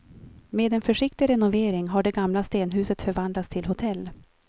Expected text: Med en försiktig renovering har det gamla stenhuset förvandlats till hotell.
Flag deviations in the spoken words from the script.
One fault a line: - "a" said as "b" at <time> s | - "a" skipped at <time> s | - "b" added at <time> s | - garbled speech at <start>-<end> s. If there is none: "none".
none